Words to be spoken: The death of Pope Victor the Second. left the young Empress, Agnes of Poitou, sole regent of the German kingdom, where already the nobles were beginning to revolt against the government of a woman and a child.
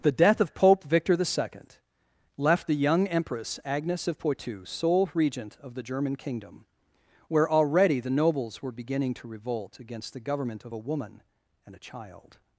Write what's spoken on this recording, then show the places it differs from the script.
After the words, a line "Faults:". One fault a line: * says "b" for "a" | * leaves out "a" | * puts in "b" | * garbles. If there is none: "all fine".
The death of Pope Victor the Second. left the young Empress, Agnes of Poitou, sole regent of the German kingdom, where already the nobles were beginning to revolt against the government of a woman and a child.
Faults:
all fine